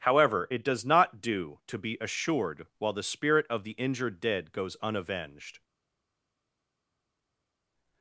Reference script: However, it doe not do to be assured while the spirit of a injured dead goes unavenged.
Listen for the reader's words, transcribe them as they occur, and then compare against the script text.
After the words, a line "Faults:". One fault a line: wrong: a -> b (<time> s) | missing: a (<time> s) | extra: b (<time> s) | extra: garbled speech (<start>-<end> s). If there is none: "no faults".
However, it does not do to be assured while the spirit of the injured dead goes unavenged.
Faults:
wrong: doe -> does (0.6 s)
wrong: a -> the (3.6 s)